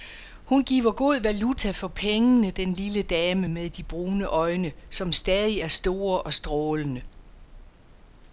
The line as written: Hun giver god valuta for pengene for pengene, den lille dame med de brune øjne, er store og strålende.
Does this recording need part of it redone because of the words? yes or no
yes